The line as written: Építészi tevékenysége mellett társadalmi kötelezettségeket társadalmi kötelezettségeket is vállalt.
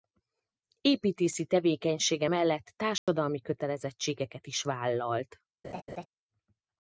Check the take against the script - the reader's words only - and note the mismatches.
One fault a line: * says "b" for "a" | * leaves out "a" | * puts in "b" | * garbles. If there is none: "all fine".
* leaves out "társadalmi kötelezettségeket"